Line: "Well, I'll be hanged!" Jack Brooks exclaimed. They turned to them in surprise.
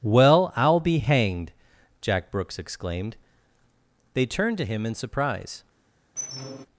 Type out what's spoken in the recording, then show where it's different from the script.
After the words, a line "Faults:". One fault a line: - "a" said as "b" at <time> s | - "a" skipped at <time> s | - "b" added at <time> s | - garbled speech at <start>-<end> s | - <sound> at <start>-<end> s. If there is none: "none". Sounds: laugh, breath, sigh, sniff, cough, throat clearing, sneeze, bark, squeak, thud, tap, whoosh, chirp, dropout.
"Well, I'll be hanged!" Jack Brooks exclaimed. They turned to him in surprise.
Faults:
- "them" said as "him" at 4.7 s
- squeak at 6.2-6.7 s